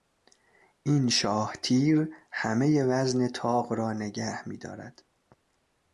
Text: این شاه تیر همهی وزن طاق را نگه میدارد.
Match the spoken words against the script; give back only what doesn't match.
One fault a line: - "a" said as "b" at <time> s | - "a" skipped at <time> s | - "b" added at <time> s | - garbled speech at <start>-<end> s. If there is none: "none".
none